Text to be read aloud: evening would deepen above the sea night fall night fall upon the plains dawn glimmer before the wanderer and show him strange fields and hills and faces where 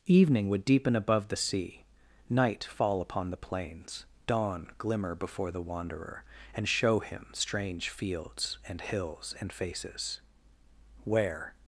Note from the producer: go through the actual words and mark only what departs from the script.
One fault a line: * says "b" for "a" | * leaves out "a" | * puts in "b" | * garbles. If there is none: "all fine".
* leaves out "night fall"